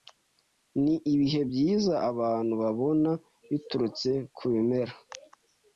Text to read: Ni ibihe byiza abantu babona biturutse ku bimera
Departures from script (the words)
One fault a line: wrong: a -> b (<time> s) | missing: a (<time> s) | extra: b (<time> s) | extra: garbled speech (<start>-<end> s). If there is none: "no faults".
no faults